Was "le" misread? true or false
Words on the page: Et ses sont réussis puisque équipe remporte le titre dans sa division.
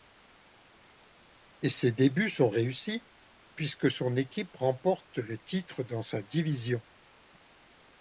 false